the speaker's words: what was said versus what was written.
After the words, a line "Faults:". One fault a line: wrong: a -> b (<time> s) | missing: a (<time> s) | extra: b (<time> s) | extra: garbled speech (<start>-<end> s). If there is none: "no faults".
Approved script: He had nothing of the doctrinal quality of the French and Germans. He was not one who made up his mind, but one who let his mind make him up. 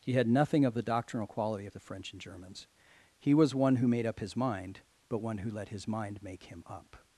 He had nothing of the doctrinal quality of the French and Germans. He was one who made up his mind, but one who let his mind make him up.
Faults:
missing: not (3.5 s)